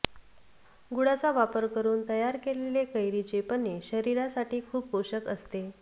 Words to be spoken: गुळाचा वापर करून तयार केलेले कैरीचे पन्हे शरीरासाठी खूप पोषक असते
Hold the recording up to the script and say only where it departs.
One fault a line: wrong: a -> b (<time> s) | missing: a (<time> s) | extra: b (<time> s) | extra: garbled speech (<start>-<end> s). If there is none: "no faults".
no faults